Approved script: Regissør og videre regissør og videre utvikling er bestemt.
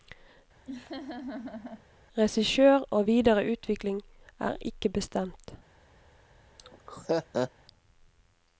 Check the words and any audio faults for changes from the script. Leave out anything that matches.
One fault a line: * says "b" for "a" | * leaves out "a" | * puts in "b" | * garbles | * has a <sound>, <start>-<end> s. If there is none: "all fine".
* has a laugh, 0.7-1.9 s
* leaves out "regissør og videre"
* puts in "ikke"
* has a laugh, 6.6-7.5 s